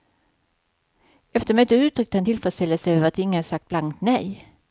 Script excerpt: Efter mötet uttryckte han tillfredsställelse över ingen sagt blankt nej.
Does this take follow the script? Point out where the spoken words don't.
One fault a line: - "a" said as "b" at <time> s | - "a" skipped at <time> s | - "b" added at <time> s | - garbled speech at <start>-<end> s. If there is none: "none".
- "att" added at 3.1 s